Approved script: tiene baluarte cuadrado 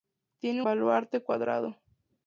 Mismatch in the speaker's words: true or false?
false